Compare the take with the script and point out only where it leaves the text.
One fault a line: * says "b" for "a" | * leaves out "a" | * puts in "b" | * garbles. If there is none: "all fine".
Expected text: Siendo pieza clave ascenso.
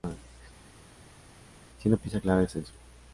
all fine